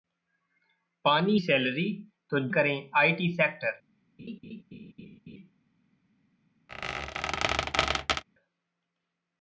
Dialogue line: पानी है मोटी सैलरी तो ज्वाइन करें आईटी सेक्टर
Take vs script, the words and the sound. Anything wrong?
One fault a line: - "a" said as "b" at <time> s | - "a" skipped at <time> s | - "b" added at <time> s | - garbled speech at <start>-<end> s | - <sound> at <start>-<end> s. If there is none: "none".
- "है मोटी" skipped at 1.4 s
- "ज्वाइन" skipped at 2.5 s
- laugh at 4.2-5.5 s
- squeak at 6.7-8.2 s